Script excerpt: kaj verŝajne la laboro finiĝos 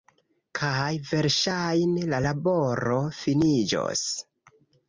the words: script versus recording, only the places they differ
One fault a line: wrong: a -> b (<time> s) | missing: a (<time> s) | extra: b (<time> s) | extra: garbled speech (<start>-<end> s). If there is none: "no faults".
no faults